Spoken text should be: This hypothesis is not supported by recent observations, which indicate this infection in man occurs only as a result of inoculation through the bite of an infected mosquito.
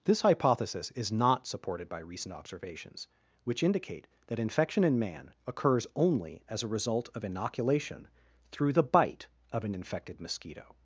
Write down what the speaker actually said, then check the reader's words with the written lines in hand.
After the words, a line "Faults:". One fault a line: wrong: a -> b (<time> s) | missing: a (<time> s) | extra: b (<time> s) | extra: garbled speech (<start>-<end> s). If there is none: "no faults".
This hypothesis is not supported by recent observations, which indicate that infection in man occurs only as a result of inoculation through the bite of an infected mosquito.
Faults:
wrong: this -> that (4.3 s)